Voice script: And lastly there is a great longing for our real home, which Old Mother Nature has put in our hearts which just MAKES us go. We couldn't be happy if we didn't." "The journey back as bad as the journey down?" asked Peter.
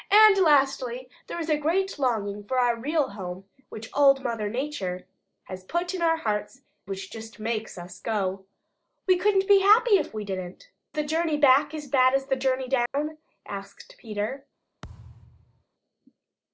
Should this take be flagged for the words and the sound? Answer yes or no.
yes